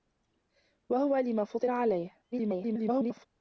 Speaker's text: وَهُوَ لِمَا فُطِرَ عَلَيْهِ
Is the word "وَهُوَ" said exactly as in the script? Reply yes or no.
yes